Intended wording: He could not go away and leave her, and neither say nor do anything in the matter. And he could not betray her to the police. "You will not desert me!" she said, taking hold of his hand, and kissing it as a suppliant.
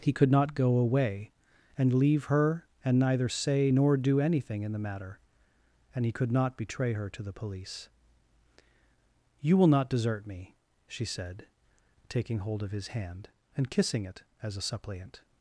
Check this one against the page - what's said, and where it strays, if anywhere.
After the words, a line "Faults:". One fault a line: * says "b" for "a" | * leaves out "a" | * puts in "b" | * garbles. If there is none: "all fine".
He could not go away and leave her, and neither say nor do anything in the matter. And he could not betray her to the police. "You will not desert me!" she said, taking hold of his hand, and kissing it as a suppliant.
Faults:
all fine